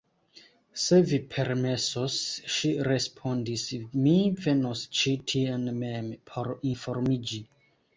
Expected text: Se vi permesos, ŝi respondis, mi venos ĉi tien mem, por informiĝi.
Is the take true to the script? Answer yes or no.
yes